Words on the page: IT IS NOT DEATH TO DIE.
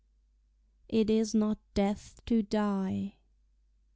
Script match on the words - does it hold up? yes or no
yes